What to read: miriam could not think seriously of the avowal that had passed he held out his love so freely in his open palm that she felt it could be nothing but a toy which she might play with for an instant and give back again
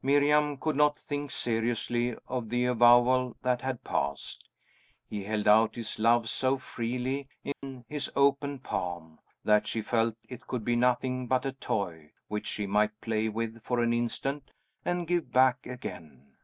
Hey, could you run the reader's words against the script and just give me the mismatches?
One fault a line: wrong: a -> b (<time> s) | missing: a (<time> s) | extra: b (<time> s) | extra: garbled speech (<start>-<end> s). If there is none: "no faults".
no faults